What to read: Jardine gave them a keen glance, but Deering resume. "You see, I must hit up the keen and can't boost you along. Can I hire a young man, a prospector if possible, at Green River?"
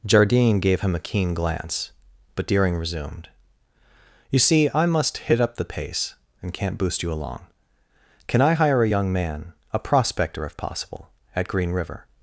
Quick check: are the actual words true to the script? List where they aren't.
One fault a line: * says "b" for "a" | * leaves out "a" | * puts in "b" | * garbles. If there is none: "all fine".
* says "him" for "them"
* says "resumed" for "resume"
* says "pace" for "keen"